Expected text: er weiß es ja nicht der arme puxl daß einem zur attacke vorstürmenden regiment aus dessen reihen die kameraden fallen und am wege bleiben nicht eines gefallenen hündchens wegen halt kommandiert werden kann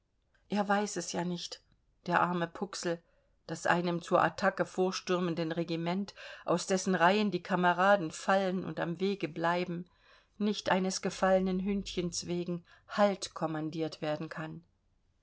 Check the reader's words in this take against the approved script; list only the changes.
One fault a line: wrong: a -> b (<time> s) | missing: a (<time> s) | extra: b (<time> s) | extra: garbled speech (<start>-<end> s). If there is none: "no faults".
no faults